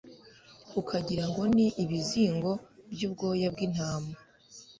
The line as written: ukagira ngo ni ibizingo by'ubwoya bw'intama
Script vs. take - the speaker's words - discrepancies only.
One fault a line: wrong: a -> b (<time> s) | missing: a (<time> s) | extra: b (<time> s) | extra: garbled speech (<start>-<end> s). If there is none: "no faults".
no faults